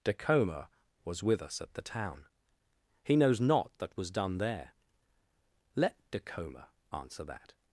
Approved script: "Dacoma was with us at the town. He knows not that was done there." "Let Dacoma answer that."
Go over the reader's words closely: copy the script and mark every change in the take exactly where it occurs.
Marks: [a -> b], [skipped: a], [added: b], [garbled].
"Dacoma was with us at the town. He knows not that was done there." "Let Dacoma answer that."